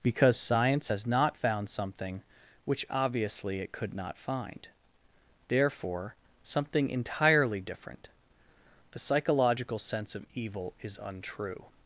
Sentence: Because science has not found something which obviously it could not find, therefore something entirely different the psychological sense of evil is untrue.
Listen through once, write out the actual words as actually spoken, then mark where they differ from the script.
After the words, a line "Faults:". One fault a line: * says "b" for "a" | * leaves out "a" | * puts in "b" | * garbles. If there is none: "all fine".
Because science has not found something which obviously it could not find, therefore something entirely different the psychological sense of evil is untrue.
Faults:
all fine